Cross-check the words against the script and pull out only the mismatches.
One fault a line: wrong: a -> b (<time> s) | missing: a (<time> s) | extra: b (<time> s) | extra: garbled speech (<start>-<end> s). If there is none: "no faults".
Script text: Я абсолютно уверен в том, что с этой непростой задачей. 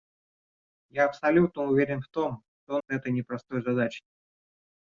no faults